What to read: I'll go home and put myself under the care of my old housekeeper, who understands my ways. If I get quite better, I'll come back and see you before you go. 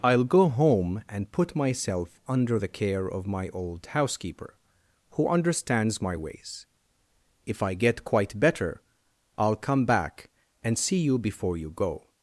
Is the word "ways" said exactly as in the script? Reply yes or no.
yes